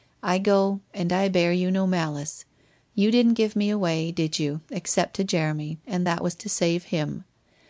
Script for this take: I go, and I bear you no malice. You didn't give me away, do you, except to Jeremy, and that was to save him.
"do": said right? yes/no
no